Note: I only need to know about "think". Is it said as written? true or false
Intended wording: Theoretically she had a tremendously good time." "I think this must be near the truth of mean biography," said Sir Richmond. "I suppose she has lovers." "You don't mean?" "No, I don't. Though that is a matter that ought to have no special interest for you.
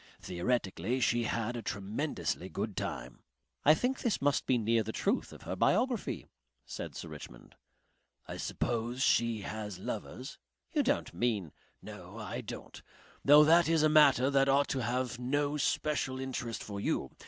true